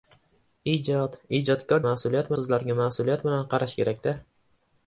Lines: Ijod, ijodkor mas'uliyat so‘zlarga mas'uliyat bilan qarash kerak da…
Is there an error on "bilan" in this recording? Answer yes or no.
no